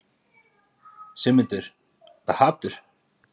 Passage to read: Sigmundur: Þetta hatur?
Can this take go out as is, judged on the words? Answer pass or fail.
pass